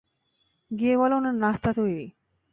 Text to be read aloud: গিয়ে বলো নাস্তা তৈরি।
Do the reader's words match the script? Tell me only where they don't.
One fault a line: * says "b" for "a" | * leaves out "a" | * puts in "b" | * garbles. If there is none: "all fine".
* puts in "উনার"